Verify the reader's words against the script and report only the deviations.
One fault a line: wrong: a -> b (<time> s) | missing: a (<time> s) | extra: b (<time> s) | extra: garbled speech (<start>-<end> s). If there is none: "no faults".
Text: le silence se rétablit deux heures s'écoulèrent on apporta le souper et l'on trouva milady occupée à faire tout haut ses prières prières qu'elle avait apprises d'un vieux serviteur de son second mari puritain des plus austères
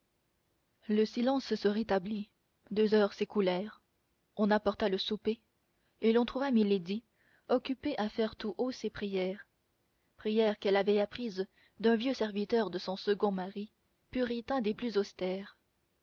no faults